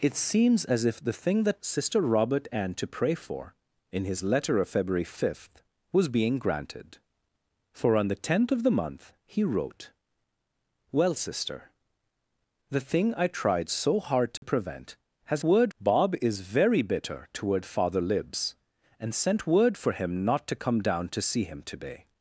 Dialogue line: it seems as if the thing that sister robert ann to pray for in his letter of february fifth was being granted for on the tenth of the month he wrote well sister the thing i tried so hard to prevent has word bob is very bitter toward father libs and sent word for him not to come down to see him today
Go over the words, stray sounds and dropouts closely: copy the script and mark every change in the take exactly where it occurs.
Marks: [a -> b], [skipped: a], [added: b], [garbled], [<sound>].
it seems as if the thing that sister robert ann to pray for in his letter of february fifth was being granted for on the tenth of the month he wrote well sister the thing i tried so hard to [dropout] prevent has word bob is very bitter toward father libs and sent word for him not to come down to see him today